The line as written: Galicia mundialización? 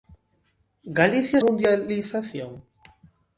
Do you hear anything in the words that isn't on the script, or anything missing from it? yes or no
no